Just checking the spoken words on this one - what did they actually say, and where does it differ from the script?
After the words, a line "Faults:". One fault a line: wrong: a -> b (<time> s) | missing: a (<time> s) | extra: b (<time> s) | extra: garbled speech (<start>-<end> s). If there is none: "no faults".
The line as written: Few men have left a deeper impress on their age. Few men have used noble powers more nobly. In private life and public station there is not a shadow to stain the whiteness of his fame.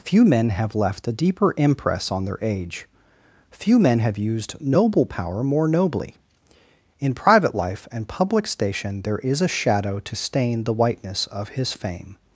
Few men have left a deeper impress on their age. Few men have used noble power more nobly. In private life and public station there is a shadow to stain the whiteness of his fame.
Faults:
wrong: powers -> power (5.0 s)
missing: not (9.4 s)